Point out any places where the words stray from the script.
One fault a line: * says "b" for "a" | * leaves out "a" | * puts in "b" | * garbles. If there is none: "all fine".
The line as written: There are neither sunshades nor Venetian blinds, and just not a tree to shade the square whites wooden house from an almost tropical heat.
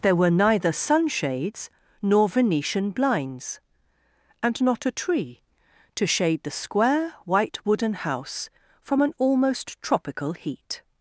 * says "were" for "are"
* leaves out "just"
* says "white" for "whites"